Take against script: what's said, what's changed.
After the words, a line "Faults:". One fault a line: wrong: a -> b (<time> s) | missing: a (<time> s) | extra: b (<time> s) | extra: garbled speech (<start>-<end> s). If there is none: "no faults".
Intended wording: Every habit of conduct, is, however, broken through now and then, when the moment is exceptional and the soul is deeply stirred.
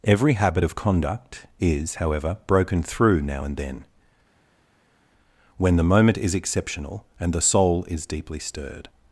Every habit of conduct, is, however, broken through now and then, when the moment is exceptional and the soul is deeply stirred.
Faults:
no faults